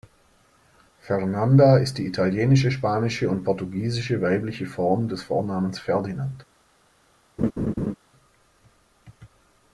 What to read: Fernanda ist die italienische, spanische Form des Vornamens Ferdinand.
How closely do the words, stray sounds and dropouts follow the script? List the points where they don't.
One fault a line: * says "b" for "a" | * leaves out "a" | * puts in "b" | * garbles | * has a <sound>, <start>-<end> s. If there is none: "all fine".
* puts in "und portugiesische weibliche"
* has a laugh, 7.4-8.0 s